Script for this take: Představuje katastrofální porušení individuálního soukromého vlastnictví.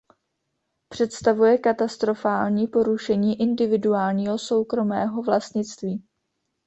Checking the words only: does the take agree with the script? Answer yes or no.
yes